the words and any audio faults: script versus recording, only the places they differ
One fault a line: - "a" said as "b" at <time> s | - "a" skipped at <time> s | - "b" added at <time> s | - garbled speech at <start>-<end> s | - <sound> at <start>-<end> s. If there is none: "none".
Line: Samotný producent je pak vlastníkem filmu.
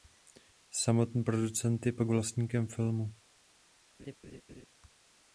- laugh at 4.0-4.7 s